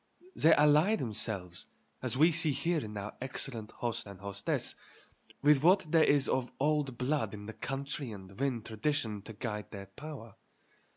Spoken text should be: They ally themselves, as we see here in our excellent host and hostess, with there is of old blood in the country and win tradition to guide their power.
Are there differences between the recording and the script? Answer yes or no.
yes